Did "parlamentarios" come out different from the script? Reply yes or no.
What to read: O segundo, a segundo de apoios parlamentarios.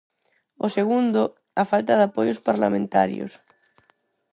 no